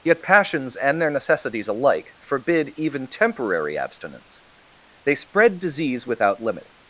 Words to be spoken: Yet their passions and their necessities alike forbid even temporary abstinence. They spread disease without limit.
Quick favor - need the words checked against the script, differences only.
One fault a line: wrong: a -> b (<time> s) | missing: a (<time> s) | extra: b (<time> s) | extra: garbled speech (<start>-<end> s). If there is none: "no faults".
missing: their (0.2 s)